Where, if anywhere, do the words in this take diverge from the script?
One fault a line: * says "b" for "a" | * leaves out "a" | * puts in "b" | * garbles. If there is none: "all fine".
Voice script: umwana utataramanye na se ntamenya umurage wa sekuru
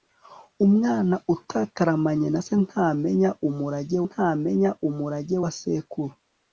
* puts in "ntamenya umurage"